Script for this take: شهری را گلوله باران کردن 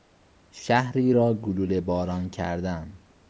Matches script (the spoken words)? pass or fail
pass